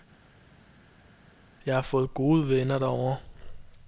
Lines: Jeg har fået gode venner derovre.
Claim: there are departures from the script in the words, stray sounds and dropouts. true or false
false